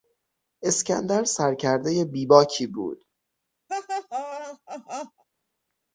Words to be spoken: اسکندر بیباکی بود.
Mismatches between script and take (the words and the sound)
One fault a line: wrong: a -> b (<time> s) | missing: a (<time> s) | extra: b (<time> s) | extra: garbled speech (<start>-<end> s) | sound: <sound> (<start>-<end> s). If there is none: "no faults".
extra: سرکردهی (1.2 s)
sound: laugh (3.7-5.2 s)